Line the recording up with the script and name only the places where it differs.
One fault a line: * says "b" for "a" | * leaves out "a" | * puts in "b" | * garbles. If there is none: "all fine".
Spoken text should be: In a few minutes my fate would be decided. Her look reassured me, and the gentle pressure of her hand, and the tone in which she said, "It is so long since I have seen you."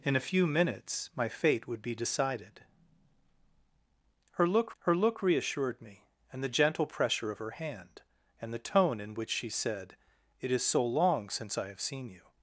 * puts in "her look"